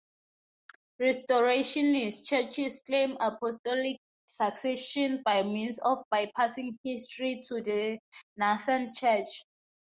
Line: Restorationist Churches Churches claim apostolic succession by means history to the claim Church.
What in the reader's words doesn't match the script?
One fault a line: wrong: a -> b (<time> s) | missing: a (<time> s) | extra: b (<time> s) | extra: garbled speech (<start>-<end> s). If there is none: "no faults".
missing: Churches (2.8 s)
extra: of bypassing (5.8 s)
wrong: claim -> nascent (8.4 s)